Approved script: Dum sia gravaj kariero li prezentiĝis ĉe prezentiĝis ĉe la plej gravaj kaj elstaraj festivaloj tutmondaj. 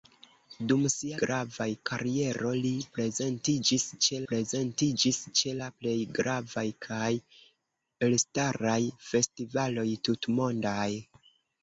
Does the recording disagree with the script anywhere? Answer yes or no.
no